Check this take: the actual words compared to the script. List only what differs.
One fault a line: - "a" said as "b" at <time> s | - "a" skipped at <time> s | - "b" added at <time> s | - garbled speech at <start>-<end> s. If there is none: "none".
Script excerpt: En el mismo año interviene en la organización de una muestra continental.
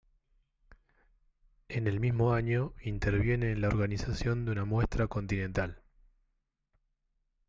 none